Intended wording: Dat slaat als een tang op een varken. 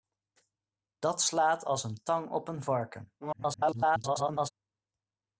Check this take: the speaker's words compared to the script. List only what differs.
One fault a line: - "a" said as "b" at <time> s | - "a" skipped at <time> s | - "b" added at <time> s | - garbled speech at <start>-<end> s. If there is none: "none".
- garbled speech at 3.2-4.5 s